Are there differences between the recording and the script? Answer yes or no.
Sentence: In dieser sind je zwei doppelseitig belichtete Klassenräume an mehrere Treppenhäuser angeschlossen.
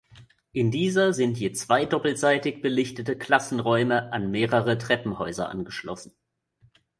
no